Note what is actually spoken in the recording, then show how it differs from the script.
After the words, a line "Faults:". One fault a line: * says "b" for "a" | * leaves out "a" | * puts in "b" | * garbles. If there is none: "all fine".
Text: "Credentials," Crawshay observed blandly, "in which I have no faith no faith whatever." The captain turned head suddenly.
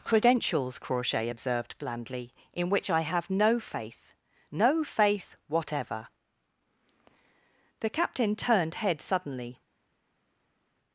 "Credentials," Crawshay observed blandly, "in which I have no faith no faith whatever." The captain turned head suddenly.
Faults:
all fine